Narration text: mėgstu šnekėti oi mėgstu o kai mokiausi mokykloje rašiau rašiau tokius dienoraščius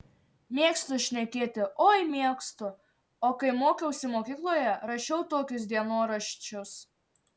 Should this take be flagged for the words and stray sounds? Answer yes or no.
yes